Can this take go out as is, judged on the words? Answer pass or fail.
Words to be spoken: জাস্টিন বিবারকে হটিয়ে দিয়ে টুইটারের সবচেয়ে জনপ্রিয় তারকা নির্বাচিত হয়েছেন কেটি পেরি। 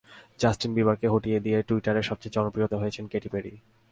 fail